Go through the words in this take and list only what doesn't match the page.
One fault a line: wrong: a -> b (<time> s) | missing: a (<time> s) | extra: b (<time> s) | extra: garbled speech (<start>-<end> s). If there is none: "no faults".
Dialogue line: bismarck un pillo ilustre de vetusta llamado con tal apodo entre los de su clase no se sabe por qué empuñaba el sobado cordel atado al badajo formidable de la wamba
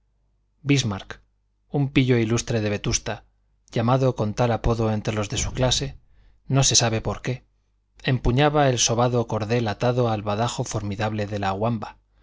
no faults